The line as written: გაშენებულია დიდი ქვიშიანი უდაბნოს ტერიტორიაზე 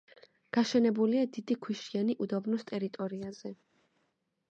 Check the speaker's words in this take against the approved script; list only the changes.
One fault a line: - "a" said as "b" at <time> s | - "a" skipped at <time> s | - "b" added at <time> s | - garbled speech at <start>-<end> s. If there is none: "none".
none